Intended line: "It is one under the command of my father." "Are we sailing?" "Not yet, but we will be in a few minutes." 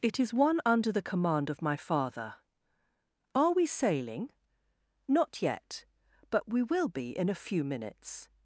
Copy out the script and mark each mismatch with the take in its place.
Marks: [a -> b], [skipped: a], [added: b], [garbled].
"It is one under the command of my father." "Are we sailing?" "Not yet, but we will be in a few minutes."